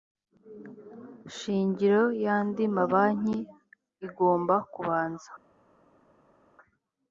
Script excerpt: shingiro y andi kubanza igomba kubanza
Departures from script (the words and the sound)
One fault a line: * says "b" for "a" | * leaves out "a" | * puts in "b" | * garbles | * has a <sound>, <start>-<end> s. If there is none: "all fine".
* says "mabanki" for "kubanza"